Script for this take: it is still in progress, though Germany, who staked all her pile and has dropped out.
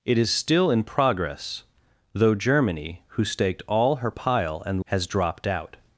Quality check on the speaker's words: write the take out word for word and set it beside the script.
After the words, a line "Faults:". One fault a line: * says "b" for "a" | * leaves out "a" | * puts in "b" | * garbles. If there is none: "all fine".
it is still in progress, though Germany, who staked all her pile and has dropped out.
Faults:
all fine